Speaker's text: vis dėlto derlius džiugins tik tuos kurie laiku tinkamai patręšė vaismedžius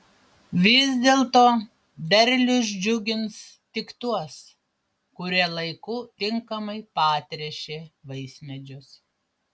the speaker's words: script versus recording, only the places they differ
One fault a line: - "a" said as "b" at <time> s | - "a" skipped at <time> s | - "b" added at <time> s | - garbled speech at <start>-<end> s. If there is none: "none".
none